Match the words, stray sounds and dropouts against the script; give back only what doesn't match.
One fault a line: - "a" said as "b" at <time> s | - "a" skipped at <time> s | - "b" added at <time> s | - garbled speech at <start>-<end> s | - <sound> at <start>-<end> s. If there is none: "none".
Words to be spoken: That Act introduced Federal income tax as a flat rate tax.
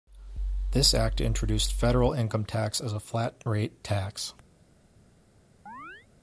- "That" said as "This" at 0.7 s
- chirp at 5.7-6.1 s